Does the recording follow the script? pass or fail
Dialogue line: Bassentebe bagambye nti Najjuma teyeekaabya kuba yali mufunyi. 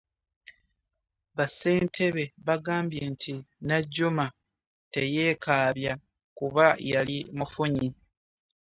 pass